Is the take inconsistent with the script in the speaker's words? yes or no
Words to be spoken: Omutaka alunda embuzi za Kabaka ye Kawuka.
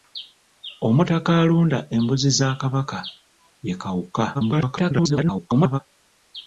yes